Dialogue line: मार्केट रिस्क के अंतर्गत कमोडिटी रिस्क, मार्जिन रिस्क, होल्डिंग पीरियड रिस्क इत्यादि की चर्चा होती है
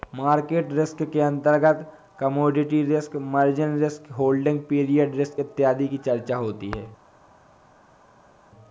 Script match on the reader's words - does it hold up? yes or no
yes